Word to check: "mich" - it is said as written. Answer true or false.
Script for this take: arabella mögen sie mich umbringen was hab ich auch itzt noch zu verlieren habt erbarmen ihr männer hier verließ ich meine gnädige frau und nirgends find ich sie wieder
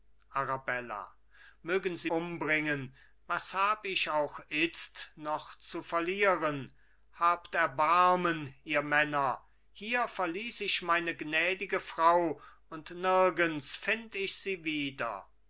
false